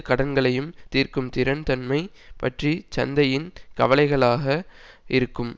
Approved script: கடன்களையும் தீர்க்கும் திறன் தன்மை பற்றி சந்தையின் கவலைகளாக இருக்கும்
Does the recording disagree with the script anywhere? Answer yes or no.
no